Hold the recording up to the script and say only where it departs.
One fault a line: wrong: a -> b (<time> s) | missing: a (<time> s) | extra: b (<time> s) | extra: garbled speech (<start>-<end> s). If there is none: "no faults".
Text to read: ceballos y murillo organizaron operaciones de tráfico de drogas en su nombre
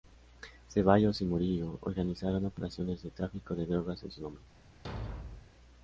no faults